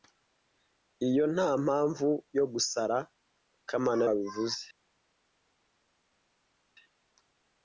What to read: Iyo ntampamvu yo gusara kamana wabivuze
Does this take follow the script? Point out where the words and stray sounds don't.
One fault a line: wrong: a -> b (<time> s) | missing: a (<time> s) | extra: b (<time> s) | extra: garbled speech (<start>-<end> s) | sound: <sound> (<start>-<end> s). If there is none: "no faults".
no faults